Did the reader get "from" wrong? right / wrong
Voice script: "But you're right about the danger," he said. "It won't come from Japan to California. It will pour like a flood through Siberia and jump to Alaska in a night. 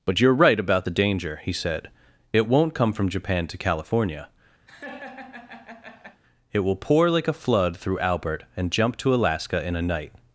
right